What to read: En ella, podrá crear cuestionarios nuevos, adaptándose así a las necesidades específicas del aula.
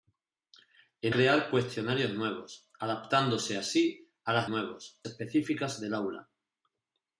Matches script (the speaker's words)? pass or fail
fail